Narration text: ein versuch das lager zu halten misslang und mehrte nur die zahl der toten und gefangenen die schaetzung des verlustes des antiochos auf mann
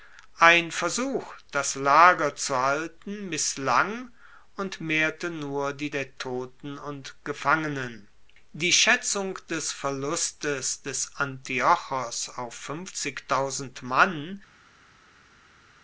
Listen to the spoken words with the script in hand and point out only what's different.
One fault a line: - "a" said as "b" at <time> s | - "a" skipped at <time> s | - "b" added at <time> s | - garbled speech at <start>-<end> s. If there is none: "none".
- "zahl" skipped at 5.9 s